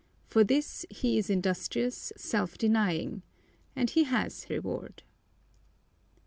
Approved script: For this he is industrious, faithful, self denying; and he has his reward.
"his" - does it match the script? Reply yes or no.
no